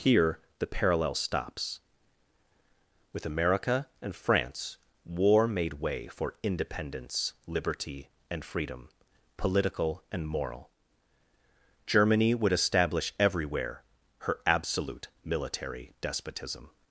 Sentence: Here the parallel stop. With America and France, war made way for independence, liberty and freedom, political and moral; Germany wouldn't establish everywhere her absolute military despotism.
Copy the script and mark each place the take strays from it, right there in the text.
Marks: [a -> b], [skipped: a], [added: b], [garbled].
Here the parallel [stop. -> stops] With America and France, war made way for independence, liberty and freedom, political and moral; Germany [wouldn't -> would] establish everywhere her absolute military despotism.